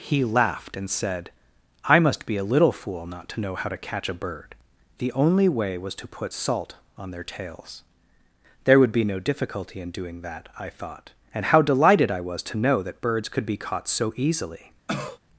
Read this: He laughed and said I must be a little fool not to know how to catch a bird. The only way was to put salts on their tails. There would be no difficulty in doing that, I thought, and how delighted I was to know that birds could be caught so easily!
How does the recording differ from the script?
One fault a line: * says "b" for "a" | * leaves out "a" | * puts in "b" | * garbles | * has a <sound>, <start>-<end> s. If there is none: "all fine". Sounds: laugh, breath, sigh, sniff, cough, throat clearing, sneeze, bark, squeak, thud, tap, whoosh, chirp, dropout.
* says "salt" for "salts"
* has a cough, 14.9-15.2 s